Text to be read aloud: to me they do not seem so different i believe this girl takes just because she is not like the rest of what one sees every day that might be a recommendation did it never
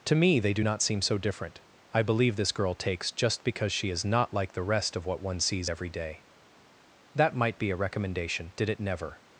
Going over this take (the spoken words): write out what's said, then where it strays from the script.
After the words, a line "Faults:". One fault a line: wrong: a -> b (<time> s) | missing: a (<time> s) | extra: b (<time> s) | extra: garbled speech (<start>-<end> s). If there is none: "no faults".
to me they do not seem so different i believe this girl takes just because she is not like the rest of what one sees every day that might be a recommendation did it never
Faults:
no faults